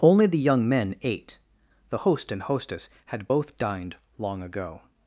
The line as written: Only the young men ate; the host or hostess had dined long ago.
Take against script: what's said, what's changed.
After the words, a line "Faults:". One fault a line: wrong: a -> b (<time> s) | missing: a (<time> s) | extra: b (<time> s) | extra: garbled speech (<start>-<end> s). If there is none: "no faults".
Only the young men ate; the host and hostess had both dined long ago.
Faults:
wrong: or -> and (2.3 s)
extra: both (3.2 s)